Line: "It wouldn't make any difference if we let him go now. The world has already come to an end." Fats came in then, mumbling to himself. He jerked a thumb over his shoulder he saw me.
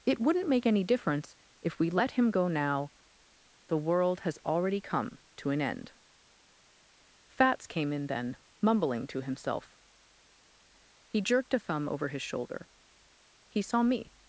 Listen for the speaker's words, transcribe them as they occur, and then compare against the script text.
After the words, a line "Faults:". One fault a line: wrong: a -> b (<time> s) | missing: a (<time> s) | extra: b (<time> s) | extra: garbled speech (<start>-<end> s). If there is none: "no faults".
"It wouldn't make any difference if we let him go now. The world has already come to an end." Fats came in then, mumbling to himself. He jerked a thumb over his shoulder he saw me.
Faults:
no faults